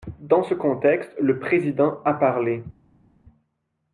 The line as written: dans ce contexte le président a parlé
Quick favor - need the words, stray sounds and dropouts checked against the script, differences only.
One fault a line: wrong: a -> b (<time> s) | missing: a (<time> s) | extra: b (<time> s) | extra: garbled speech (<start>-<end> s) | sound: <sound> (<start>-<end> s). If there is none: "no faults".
no faults